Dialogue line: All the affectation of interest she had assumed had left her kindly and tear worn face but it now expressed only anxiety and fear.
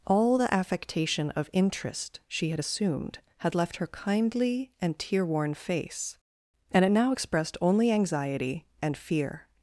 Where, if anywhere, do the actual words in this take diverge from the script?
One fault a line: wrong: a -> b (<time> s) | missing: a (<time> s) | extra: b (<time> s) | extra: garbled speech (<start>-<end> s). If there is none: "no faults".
wrong: but -> and (6.7 s)